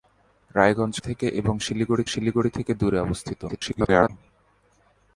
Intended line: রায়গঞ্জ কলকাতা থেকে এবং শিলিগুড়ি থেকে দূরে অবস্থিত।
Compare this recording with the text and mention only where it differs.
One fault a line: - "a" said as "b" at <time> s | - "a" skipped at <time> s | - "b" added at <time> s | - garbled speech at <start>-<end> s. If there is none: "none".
- "কলকাতা" skipped at 0.9 s
- "শিলিগুড়ি" added at 2.1 s
- garbled speech at 3.5-4.1 s